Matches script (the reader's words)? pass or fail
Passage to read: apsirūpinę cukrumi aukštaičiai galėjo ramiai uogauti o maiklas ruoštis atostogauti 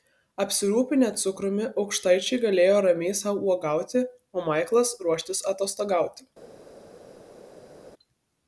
fail